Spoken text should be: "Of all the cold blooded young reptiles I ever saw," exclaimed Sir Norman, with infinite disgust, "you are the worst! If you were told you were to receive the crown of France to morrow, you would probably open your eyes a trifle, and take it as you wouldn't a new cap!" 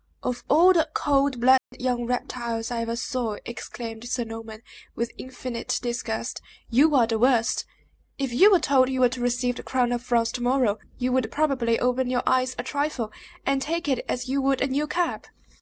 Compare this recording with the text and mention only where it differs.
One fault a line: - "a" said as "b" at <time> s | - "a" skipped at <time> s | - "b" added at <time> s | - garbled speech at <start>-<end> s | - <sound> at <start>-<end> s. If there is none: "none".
- dropout at 1.6-1.7 s
- "wouldn't" said as "would" at 14.4 s